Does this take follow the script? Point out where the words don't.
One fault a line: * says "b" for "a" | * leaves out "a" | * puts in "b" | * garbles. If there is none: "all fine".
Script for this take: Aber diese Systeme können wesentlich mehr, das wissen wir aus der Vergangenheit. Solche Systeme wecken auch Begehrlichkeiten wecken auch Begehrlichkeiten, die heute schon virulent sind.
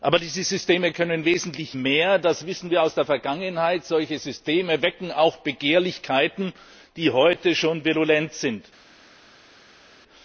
* leaves out "wecken auch Begehrlichkeiten"